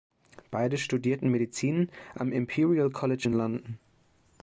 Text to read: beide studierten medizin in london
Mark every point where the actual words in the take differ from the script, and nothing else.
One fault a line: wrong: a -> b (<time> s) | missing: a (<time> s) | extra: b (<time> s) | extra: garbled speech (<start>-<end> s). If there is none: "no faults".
extra: am imperial college (2.1 s)